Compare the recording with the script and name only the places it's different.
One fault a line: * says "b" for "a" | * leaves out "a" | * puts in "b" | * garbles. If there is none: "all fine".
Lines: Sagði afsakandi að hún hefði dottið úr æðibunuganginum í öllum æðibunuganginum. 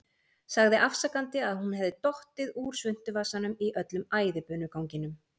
* says "svuntuvasanum" for "æðibunuganginum"